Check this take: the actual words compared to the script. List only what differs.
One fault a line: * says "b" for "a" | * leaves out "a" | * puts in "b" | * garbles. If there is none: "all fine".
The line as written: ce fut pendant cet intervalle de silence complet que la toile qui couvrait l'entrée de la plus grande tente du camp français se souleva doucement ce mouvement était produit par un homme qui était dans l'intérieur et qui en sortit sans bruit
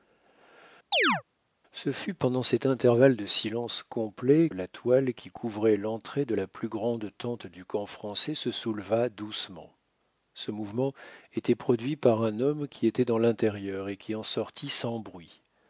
* leaves out "que"